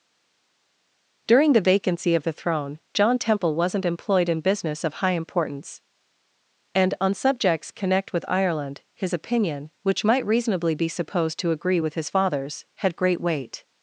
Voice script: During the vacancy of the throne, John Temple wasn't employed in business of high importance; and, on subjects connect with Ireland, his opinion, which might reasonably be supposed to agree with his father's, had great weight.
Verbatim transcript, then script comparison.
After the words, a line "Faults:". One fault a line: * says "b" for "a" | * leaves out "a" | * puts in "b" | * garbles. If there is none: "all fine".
During the vacancy of the throne, John Temple wasn't employed in business of high importance; and, on subjects connect with Ireland, his opinion, which might reasonably be supposed to agree with his father's, had great weight.
Faults:
all fine